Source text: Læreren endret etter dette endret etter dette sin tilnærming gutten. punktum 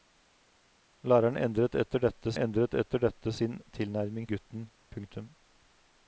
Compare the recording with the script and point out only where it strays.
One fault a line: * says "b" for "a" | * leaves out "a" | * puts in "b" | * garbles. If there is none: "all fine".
all fine